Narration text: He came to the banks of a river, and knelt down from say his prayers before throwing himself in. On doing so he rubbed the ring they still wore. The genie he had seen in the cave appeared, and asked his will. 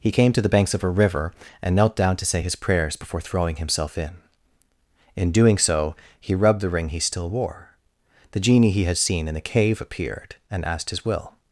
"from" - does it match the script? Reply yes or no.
no